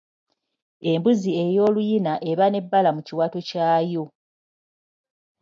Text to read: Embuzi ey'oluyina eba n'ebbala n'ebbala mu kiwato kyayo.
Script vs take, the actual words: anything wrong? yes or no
yes